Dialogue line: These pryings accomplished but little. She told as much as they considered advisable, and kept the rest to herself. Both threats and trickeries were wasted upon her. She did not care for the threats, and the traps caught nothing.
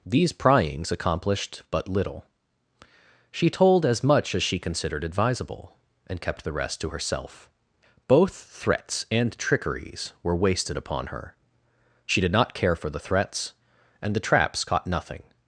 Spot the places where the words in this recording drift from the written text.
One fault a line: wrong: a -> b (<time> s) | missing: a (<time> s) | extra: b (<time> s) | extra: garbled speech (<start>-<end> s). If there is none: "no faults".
wrong: they -> she (4.4 s)